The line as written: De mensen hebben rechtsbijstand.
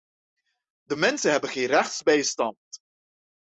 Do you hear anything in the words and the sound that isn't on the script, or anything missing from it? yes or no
yes